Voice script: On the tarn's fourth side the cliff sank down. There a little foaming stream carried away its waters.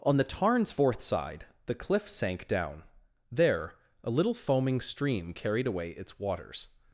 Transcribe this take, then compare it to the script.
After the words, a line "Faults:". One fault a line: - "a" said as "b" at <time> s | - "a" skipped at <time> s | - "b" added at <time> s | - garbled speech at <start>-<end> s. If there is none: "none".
On the tarn's fourth side the cliff sank down. There a little foaming stream carried away its waters.
Faults:
none